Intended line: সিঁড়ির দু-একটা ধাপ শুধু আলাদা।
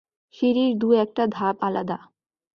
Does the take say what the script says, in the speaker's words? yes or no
no